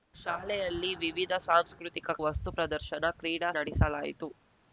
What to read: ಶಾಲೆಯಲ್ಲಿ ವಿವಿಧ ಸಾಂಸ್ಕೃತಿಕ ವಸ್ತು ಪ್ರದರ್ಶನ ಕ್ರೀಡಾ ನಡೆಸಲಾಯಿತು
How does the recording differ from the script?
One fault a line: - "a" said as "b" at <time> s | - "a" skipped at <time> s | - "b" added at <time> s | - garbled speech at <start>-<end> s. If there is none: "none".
none